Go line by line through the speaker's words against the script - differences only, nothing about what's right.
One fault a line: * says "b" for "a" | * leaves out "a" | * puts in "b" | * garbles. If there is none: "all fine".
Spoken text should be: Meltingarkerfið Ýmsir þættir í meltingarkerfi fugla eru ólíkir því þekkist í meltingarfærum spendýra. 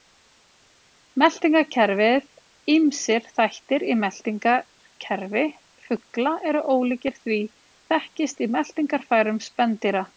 all fine